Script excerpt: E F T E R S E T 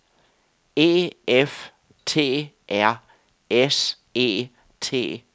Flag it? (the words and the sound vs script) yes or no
yes